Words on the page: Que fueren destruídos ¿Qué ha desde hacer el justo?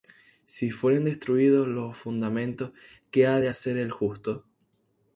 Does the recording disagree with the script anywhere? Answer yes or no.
yes